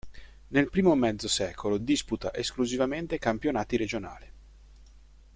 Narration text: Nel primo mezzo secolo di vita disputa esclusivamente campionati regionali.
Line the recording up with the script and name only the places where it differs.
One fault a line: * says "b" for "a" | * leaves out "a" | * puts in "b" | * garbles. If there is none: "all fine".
* leaves out "di vita"